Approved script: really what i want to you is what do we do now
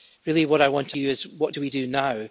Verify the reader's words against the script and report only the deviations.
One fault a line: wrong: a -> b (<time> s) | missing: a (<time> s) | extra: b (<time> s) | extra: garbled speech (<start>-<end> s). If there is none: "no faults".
no faults